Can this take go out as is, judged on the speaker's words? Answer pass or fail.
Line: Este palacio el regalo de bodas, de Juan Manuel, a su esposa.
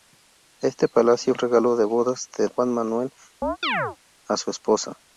pass